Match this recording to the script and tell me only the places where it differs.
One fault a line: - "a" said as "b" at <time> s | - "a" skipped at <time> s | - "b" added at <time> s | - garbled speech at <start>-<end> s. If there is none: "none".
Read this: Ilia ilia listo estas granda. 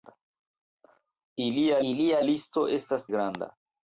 none